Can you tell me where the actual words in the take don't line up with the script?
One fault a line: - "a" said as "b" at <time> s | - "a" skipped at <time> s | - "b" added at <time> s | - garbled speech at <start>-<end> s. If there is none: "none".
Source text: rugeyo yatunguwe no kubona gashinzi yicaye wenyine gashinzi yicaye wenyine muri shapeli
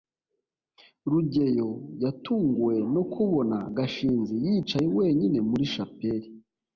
- "gashinzi yicaye wenyine" skipped at 5.4 s